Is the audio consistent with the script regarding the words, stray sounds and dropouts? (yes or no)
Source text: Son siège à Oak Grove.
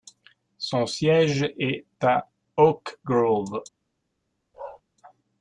no